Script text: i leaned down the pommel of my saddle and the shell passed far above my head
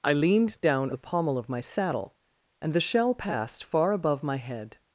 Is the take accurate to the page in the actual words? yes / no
yes